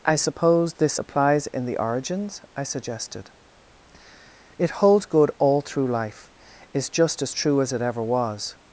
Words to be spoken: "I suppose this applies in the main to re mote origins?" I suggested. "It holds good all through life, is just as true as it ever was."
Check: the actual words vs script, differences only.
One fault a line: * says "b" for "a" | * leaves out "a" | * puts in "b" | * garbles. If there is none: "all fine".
* leaves out "main to re mote"